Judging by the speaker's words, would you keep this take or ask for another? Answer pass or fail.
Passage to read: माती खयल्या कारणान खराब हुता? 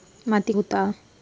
fail